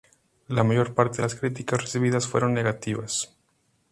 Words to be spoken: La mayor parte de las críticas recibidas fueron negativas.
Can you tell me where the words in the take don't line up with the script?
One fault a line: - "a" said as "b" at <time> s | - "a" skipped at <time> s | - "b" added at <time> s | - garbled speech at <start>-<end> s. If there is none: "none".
none